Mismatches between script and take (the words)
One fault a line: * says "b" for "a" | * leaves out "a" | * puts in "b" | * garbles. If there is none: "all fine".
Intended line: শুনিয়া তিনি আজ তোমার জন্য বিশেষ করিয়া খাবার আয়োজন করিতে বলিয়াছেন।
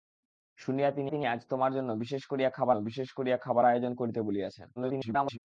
* puts in "তিনি"
* puts in "বিশেষ করিয়া খাবার"
* garbles